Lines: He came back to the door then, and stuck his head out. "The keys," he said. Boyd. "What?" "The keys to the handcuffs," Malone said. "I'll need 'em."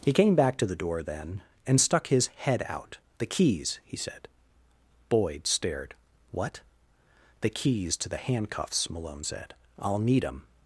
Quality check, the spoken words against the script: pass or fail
fail